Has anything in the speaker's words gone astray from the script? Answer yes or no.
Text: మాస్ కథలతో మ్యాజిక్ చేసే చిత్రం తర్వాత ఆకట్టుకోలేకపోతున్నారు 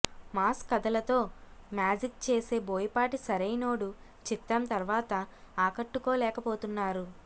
yes